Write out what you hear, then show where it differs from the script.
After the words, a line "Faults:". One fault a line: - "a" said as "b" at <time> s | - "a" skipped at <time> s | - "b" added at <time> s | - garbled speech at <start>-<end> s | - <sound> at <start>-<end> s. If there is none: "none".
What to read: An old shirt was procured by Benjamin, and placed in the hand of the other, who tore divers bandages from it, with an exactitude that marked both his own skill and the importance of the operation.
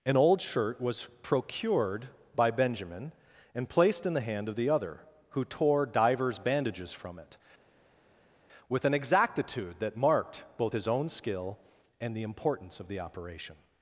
An old shirt was procured by Benjamin, and placed in the hand of the other, who tore divers bandages from it, with an exactitude that marked both his own skill and the importance of the operation.
Faults:
none